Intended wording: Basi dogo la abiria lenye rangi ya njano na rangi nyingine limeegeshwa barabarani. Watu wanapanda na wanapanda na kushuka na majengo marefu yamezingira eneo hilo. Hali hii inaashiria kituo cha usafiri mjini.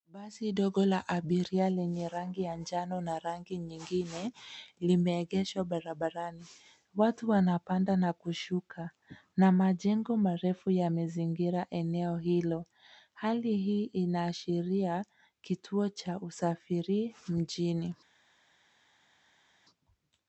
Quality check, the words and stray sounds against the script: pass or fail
fail